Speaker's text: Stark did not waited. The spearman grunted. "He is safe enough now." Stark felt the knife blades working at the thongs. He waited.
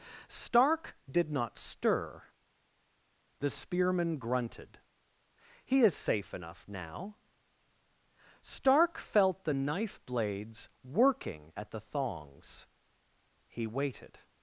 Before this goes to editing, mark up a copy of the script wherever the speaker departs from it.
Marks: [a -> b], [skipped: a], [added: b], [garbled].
Stark did not [waited. -> stir] The spearman grunted. "He is safe enough now." Stark felt the knife blades working at the thongs. He waited.